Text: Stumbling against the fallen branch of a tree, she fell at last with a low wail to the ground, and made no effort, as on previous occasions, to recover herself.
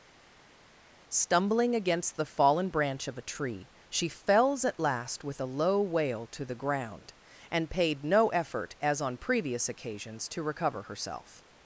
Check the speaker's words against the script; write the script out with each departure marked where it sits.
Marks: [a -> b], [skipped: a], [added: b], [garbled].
Stumbling against the fallen branch of a tree, she [fell -> fells] at last with a low wail to the ground, and [made -> paid] no effort, as on previous occasions, to recover herself.